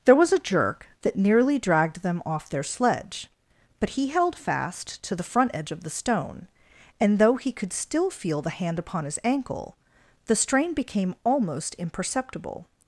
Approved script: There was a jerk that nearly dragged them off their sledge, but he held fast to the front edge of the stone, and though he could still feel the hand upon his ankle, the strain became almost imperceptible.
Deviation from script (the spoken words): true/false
false